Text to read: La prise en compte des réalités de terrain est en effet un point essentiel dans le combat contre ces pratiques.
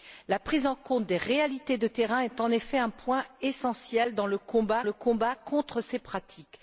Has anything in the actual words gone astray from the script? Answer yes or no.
yes